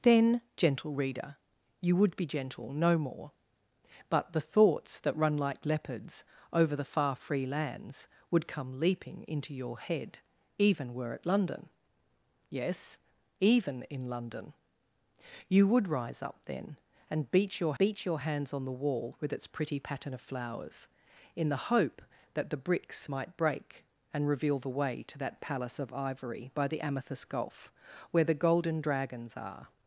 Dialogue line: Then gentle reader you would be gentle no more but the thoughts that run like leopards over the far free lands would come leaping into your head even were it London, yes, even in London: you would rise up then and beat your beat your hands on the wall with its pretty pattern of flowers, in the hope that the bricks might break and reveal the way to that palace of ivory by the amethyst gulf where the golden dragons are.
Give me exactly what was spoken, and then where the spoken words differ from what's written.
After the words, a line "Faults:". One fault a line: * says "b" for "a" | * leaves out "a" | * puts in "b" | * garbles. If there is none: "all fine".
Then gentle reader you would be gentle no more but the thoughts that run like leopards over the far free lands would come leaping into your head even were it London, yes, even in London: you would rise up then and beat your beat your hands on the wall with its pretty pattern of flowers, in the hope that the bricks might break and reveal the way to that palace of ivory by the amethyst gulf where the golden dragons are.
Faults:
all fine